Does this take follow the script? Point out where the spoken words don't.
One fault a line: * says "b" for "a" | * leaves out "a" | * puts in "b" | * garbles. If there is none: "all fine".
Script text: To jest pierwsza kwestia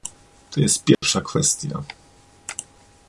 all fine